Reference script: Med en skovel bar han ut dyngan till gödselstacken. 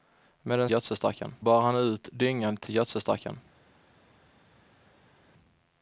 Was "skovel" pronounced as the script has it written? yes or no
no